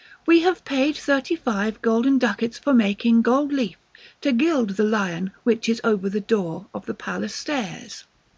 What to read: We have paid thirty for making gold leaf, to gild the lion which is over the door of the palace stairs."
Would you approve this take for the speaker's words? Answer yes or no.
no